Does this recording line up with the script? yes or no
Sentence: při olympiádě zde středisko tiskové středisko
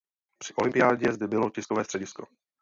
no